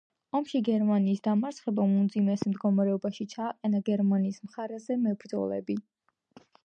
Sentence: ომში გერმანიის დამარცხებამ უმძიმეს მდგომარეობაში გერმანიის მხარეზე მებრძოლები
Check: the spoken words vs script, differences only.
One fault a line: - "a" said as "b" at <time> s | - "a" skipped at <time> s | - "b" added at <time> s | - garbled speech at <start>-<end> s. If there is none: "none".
- "ჩააყენა" added at 3.4 s